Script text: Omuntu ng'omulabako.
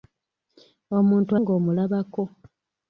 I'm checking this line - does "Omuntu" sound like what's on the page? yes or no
yes